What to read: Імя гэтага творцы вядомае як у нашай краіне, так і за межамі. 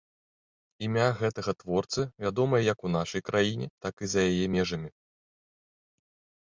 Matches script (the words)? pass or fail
fail